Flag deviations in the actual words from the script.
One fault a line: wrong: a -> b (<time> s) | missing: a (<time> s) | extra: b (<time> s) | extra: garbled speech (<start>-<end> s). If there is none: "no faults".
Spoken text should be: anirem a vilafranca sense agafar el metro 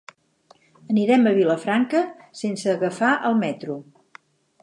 no faults